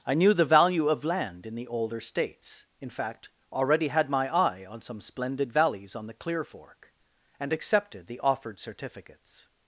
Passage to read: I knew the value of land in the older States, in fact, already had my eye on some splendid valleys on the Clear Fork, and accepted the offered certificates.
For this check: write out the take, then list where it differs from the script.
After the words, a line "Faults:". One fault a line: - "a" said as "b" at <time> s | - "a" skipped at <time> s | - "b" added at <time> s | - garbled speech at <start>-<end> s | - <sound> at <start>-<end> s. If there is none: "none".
I knew the value of land in the older States, in fact, already had my eye on some splendid valleys on the Clear Fork, and accepted the offered certificates.
Faults:
none